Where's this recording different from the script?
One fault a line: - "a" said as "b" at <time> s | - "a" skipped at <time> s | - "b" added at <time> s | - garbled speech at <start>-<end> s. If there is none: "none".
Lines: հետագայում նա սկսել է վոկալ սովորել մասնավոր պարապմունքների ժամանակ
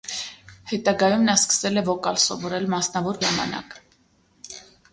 - "պարապմունքների" skipped at 3.2 s